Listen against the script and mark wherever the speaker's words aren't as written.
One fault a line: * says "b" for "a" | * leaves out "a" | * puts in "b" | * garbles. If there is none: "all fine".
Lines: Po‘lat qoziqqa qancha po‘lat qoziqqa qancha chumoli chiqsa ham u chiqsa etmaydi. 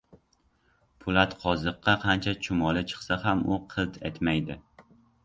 * leaves out "po‘lat qoziqqa qancha"
* says "qilt" for "chiqsa"